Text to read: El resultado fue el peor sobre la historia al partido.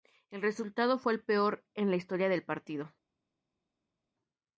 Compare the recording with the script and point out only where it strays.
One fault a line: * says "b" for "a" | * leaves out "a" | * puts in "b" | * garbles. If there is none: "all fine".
* says "en" for "sobre"
* says "del" for "al"